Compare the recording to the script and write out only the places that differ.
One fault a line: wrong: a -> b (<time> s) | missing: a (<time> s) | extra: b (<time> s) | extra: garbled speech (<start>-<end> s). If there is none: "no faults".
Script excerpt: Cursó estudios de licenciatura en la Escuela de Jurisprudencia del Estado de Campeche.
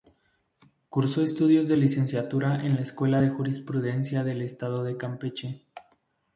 no faults